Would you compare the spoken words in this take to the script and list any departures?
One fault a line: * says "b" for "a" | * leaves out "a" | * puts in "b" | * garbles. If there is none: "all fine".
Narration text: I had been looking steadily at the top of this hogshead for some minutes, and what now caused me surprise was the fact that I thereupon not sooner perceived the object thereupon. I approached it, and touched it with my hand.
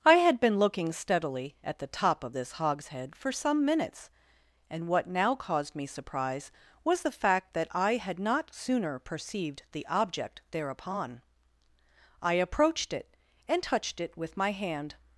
* says "had" for "thereupon"